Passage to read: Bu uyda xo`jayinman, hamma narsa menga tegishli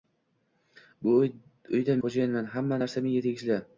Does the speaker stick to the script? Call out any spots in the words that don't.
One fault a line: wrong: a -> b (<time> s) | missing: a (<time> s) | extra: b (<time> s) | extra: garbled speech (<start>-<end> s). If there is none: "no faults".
no faults